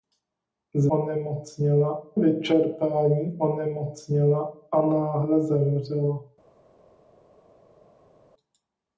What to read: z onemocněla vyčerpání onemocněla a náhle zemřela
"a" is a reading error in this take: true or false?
false